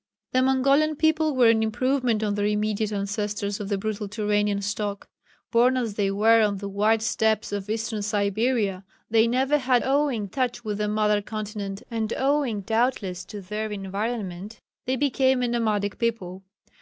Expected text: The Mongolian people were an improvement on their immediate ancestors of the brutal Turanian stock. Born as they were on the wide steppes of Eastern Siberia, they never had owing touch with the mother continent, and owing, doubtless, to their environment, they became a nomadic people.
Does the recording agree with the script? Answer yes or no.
yes